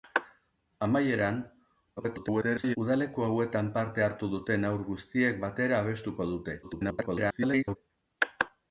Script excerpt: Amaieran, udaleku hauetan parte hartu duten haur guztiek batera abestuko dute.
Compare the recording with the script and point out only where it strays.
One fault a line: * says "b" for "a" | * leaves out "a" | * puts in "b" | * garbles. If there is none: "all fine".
* garbles
* garbles